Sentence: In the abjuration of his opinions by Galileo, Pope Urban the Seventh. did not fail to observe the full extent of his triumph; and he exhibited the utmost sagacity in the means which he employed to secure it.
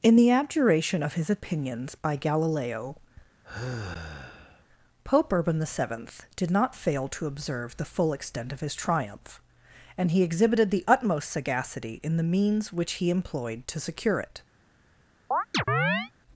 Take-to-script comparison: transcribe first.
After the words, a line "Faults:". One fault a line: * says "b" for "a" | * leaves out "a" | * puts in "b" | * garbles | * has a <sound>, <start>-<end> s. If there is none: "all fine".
In the abjuration of his opinions by Galileo, Pope Urban the Seventh. did not fail to observe the full extent of his triumph; and he exhibited the utmost sagacity in the means which he employed to secure it.
Faults:
* has a sigh, 3.4-4.6 s
* has a chirp, 15.3-16.1 s